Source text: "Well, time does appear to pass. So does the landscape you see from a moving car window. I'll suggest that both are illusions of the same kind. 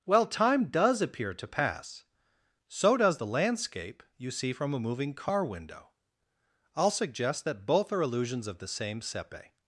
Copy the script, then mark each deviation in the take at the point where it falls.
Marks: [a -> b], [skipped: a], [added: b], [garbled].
"Well, time does appear to pass. So does the landscape you see from a moving car window. I'll suggest that both are illusions of the same [kind. -> sepe]